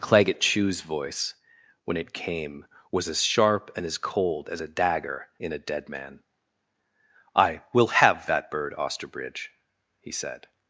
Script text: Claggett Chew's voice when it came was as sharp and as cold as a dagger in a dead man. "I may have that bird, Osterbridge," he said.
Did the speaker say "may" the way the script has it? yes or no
no